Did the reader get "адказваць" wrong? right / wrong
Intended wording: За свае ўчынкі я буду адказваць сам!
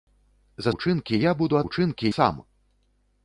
wrong